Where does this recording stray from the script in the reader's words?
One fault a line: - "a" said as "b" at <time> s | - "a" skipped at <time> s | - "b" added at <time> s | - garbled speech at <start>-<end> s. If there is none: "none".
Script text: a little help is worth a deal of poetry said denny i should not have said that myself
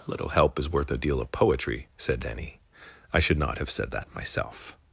none